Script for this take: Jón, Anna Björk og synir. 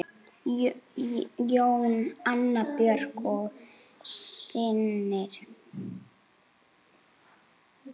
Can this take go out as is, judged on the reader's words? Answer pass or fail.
pass